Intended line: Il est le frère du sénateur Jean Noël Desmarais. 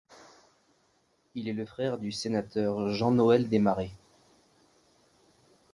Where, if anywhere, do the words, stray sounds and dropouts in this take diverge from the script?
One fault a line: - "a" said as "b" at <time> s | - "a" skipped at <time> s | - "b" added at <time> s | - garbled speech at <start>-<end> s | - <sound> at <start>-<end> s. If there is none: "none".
none